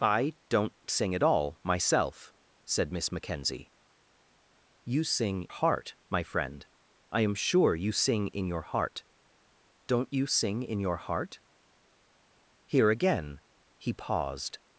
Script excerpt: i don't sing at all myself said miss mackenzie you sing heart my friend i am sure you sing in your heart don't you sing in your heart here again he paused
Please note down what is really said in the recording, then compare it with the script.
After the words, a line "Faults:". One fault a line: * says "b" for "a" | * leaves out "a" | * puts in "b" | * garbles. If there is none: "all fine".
i don't sing at all myself said miss mackenzie you sing heart my friend i am sure you sing in your heart don't you sing in your heart here again he paused
Faults:
all fine